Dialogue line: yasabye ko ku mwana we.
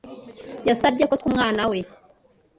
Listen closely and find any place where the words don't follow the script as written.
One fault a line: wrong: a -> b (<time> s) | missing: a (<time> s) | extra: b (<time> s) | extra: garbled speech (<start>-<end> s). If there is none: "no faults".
no faults